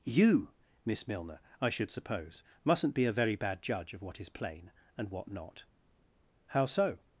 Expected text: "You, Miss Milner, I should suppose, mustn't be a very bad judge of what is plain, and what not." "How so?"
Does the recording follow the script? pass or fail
pass